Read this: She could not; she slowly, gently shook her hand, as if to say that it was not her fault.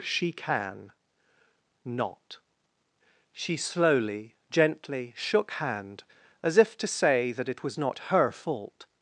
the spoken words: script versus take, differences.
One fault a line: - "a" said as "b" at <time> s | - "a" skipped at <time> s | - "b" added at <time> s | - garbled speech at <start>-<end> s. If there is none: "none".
- "could" said as "can" at 0.3 s
- "her" skipped at 5.5 s